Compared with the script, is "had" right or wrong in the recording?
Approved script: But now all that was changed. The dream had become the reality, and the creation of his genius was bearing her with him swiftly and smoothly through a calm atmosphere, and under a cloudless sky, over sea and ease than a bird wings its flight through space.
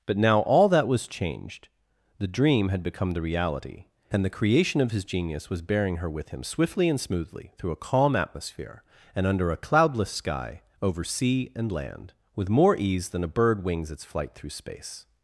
right